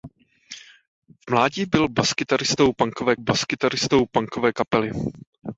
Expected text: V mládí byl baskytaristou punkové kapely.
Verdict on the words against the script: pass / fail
fail